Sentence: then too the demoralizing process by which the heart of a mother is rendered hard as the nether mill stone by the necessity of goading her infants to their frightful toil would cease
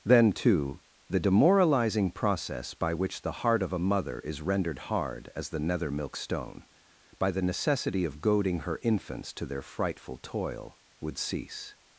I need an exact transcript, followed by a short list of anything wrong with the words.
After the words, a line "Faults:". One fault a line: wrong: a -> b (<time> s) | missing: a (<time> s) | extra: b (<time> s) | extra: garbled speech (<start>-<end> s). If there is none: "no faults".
then too the demoralizing process by which the heart of a mother is rendered hard as the nether milk stone by the necessity of goading her infants to their frightful toil would cease
Faults:
wrong: mill -> milk (5.9 s)